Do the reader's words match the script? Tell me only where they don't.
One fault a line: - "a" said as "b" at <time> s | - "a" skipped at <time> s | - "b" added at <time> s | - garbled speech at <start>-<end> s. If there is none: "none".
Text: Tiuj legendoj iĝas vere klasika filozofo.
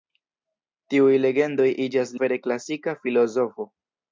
none